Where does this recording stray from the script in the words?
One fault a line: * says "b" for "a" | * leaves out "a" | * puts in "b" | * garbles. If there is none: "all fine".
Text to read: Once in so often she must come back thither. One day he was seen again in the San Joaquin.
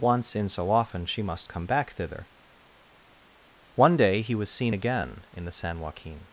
all fine